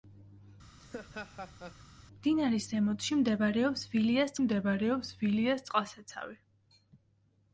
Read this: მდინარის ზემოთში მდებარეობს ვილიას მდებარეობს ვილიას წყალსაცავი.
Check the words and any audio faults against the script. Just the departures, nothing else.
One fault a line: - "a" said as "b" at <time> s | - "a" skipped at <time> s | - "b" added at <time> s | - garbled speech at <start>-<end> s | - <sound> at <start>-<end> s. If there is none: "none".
- laugh at 0.8-1.8 s